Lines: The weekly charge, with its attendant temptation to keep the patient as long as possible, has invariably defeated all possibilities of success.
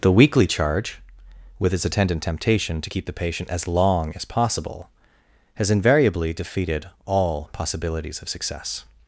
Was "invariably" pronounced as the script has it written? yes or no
yes